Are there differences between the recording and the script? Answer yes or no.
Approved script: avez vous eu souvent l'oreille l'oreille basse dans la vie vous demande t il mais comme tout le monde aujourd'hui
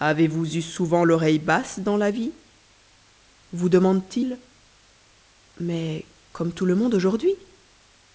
yes